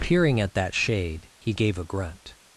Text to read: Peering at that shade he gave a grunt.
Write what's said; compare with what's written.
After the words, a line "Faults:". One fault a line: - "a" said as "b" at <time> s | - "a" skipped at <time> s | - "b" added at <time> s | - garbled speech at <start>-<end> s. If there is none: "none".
Peering at that shade he gave a grunt.
Faults:
none